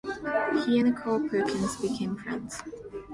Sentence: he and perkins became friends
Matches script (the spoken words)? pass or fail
fail